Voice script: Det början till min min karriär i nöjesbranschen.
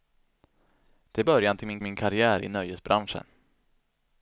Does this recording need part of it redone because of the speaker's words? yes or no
no